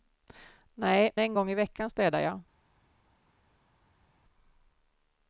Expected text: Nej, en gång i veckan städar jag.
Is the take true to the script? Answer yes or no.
yes